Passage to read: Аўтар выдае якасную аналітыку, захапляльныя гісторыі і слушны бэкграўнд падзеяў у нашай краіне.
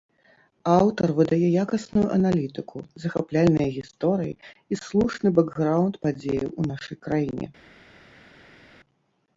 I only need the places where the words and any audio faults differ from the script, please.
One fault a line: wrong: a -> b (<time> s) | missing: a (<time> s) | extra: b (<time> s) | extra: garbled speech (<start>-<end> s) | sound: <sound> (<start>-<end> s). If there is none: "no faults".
no faults